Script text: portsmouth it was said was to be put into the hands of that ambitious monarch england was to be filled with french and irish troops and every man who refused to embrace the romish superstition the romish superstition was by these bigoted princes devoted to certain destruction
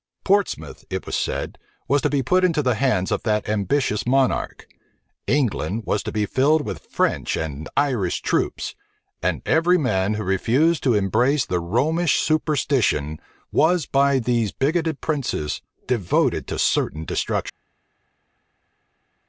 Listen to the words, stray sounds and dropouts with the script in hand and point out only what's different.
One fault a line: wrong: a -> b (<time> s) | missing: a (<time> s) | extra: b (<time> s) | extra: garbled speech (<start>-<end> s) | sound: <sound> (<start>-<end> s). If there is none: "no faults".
missing: the romish superstition (13.2 s)